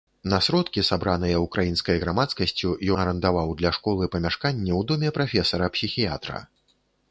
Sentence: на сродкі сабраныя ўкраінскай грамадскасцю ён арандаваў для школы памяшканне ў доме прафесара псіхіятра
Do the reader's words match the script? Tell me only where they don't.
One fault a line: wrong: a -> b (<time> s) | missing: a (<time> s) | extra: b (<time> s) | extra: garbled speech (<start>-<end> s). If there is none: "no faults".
missing: ён (2.7 s)